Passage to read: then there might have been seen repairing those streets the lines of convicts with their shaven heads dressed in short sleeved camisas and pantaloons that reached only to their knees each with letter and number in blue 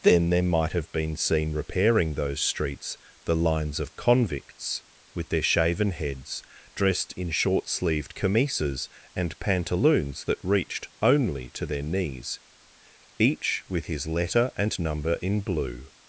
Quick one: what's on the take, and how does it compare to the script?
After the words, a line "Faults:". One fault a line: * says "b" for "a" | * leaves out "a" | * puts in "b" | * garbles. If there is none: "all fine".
then there might have been seen repairing those streets the lines of convicts with their shaven heads dressed in short sleeved camisas and pantaloons that reached only to their knees each with his letter and number in blue
Faults:
* puts in "his"